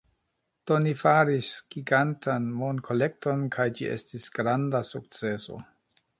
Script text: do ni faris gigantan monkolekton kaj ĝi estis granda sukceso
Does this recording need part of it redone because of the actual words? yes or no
no